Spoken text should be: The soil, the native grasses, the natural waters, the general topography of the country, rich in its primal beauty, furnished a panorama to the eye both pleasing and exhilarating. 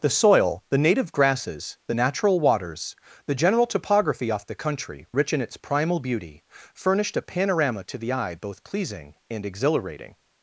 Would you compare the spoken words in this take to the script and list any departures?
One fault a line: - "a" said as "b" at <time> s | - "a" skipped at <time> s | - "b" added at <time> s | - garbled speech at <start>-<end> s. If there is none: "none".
- "of" said as "off" at 4.3 s